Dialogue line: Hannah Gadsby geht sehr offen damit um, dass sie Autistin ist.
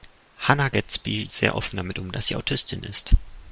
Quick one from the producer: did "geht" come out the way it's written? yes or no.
no